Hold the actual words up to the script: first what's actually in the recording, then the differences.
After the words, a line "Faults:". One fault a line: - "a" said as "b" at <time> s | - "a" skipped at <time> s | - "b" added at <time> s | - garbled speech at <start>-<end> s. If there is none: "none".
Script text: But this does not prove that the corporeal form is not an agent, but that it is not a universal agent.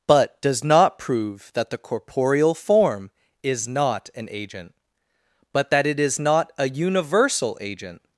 But does not prove that the corporeal form is not an agent, but that it is not a universal agent.
Faults:
- "this" skipped at 0.4 s